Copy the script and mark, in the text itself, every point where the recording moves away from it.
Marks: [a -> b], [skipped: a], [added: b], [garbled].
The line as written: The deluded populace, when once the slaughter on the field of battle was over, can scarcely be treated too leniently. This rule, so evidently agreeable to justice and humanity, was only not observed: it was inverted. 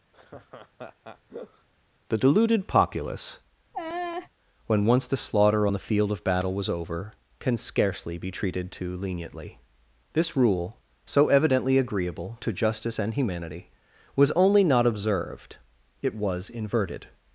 The deluded populace, when once the slaughter on the field of battle was over, can scarcely be treated too leniently. This rule, so evidently agreeable to justice and humanity, was only not observed: it was inverted.